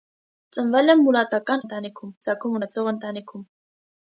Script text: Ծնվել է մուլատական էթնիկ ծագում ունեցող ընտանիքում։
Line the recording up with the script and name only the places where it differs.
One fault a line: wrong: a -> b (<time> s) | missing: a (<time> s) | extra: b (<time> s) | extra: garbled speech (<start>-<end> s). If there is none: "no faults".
wrong: էթնիկ -> ընտանիքում (1.6 s)